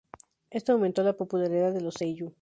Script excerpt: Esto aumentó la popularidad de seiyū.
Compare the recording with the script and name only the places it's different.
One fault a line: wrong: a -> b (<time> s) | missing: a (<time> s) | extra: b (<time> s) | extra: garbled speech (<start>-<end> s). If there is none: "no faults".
extra: los (1.8 s)